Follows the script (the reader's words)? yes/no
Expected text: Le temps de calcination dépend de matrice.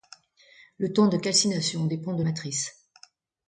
yes